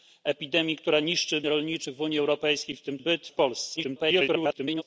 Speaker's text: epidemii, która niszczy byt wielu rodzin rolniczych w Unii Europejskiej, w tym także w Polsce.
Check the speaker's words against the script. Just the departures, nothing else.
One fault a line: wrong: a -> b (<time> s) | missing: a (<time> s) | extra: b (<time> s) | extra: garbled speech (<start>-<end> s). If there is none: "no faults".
missing: byt wielu rodzin (1.4 s)
wrong: także -> byt (3.0 s)
extra: garbled speech (3.8-4.8 s)